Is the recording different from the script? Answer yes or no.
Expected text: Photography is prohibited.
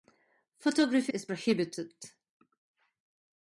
no